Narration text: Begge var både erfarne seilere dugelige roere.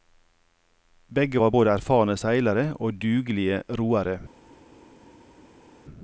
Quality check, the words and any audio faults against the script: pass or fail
fail